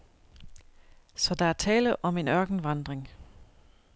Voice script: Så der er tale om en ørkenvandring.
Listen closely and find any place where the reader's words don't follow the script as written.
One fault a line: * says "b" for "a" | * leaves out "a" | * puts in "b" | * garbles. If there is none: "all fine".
all fine